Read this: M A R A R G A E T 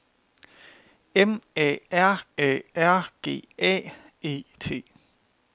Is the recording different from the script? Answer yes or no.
no